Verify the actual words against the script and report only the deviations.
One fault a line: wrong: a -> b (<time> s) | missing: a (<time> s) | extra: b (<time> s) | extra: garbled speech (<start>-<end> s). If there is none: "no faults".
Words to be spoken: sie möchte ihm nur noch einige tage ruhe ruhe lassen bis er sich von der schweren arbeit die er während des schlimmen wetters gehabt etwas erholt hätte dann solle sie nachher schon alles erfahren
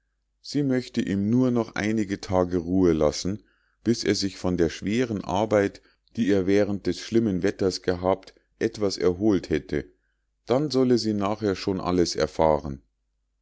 missing: ruhe (2.9 s)